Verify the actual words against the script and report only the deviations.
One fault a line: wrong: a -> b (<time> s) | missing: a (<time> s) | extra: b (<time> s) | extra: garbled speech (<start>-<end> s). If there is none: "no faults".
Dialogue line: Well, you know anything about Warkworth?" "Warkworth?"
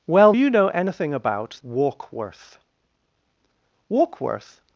no faults